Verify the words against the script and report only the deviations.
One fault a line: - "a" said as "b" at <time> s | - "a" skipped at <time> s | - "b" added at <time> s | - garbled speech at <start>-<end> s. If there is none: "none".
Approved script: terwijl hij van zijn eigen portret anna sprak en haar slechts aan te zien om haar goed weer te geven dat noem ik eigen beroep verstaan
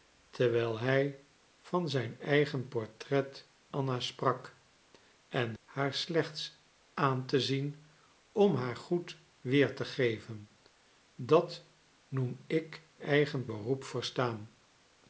none